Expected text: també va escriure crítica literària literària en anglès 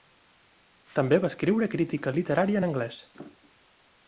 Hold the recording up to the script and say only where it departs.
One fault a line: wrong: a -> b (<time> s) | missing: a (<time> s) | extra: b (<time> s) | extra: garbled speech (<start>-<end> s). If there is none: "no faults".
missing: literària (2.6 s)